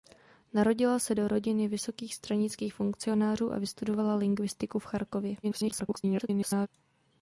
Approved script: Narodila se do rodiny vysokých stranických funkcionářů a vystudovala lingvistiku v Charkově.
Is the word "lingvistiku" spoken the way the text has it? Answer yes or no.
yes